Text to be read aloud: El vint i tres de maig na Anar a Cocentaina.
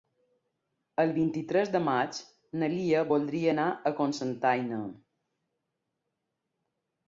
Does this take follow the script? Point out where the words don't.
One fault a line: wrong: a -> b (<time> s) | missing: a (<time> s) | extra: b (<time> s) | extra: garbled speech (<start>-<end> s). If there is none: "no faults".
extra: Lia voldria (2.7 s)